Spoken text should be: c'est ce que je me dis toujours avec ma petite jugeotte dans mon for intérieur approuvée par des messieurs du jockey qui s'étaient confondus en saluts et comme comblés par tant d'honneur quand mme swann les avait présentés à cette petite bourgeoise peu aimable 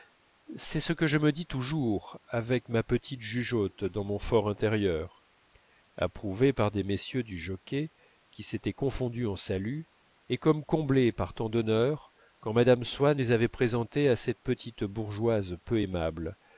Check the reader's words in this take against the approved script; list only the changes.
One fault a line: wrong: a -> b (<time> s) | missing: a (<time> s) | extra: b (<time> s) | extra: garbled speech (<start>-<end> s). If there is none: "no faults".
no faults